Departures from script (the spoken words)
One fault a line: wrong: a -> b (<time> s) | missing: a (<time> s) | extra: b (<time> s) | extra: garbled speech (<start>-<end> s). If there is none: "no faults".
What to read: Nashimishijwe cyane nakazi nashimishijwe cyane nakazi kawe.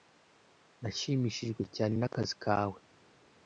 missing: nashimishijwe cyane nakazi (2.3 s)